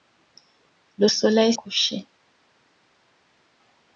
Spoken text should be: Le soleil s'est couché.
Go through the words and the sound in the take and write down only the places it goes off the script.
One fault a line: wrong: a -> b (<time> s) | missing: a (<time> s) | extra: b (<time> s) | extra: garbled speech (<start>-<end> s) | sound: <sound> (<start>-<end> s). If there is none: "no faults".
missing: s'est (1.5 s)